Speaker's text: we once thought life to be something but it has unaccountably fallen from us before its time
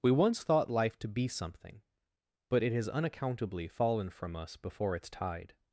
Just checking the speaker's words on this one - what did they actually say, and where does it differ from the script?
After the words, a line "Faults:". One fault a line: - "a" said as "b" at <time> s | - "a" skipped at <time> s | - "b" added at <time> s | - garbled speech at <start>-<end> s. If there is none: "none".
we once thought life to be something but it has unaccountably fallen from us before its tide
Faults:
- "time" said as "tide" at 5.1 s